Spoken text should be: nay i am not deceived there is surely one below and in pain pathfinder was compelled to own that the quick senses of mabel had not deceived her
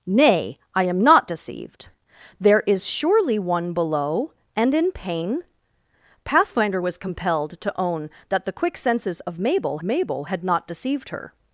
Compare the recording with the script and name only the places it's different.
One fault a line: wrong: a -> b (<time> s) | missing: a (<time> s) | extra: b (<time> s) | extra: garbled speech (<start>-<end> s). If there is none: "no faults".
extra: mabel (9.8 s)